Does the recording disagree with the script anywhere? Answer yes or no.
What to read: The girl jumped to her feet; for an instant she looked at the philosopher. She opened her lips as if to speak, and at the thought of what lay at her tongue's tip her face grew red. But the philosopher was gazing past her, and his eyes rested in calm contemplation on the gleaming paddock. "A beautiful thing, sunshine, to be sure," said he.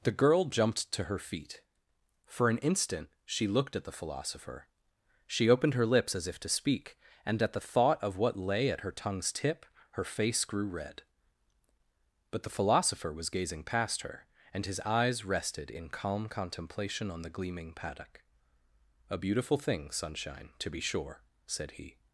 no